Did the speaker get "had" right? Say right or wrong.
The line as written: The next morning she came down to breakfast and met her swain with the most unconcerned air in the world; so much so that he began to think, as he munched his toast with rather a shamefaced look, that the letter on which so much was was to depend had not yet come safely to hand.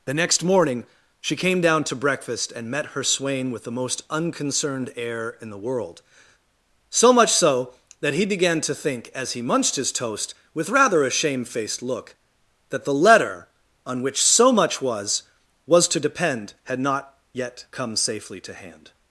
right